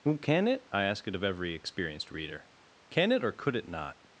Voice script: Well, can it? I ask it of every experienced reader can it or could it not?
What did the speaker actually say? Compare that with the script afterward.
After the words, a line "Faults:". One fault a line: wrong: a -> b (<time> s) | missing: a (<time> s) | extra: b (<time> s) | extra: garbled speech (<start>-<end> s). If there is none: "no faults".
Well, can it? I ask it of every experienced reader can it or could it not?
Faults:
no faults